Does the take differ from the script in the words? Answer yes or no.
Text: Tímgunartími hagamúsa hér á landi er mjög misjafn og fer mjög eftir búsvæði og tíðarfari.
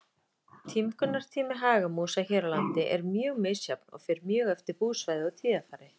no